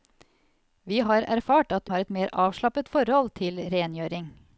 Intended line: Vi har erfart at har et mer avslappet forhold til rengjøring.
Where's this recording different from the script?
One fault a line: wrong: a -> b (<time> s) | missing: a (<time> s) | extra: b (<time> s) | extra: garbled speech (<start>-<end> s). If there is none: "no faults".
no faults